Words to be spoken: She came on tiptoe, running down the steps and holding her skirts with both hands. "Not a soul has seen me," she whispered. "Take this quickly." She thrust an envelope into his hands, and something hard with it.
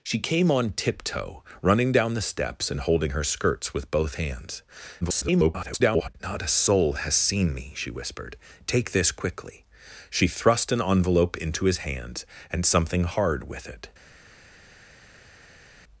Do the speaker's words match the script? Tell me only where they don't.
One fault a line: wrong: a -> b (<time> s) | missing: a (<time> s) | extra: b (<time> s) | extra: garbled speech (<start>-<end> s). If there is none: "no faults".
extra: garbled speech (5.0-6.1 s)